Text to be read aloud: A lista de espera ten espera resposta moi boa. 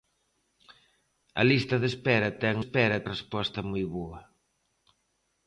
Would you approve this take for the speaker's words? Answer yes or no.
yes